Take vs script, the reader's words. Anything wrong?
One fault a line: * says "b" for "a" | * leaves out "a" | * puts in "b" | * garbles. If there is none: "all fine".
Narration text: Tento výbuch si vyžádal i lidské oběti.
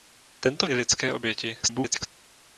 * leaves out "výbuch si vyžádal"
* garbles